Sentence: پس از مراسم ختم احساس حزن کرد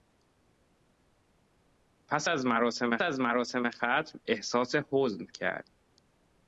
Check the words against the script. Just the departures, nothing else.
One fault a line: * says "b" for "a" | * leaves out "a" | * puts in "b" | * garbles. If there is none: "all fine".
* puts in "از مراسم"